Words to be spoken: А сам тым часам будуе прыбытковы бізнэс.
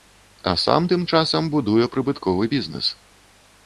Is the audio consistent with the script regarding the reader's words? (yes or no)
yes